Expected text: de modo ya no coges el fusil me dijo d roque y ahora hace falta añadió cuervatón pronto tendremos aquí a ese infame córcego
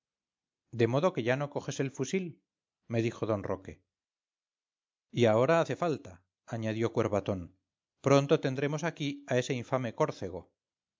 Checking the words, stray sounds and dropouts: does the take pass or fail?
fail